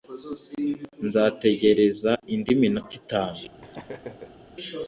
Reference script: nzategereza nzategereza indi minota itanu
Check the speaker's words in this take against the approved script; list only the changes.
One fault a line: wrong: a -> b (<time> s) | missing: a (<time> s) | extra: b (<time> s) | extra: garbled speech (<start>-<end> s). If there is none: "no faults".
missing: nzategereza (2.1 s)